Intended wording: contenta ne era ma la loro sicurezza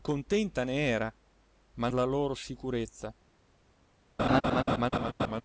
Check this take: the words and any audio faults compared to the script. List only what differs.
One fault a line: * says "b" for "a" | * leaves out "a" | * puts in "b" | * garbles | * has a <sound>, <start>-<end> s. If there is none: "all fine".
* has a laugh, 4.2-5.4 s